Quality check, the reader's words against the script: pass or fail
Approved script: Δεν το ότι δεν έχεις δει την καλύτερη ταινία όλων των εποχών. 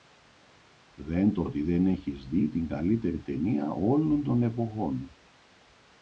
pass